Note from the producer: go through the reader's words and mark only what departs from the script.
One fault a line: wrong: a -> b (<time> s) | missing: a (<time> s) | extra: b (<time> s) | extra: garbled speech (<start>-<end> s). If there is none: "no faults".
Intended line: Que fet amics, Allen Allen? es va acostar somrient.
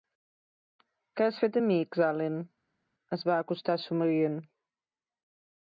extra: has (1.2 s)
missing: Allen (2.4 s)